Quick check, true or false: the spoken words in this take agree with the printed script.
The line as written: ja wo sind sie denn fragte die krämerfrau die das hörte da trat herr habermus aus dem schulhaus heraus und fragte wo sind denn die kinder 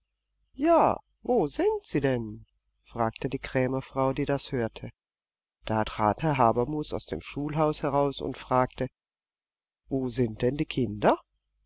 true